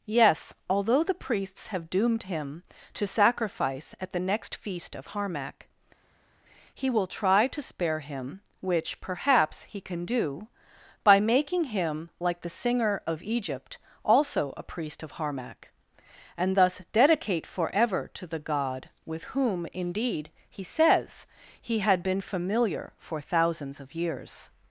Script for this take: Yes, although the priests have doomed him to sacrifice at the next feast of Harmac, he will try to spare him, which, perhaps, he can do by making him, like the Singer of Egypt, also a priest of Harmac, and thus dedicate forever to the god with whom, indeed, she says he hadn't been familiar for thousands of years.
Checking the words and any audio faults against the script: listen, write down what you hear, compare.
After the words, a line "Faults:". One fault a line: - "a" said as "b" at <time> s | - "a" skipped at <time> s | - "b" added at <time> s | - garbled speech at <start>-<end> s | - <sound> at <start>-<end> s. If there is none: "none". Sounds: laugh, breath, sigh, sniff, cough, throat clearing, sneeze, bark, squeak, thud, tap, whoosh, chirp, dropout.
Yes, although the priests have doomed him to sacrifice at the next feast of Harmac, he will try to spare him, which, perhaps, he can do by making him, like the Singer of Egypt, also a priest of Harmac, and thus dedicate forever to the god with whom, indeed, he says he had been familiar for thousands of years.
Faults:
- "she" said as "he" at 20.5 s
- "hadn't" said as "had" at 21.8 s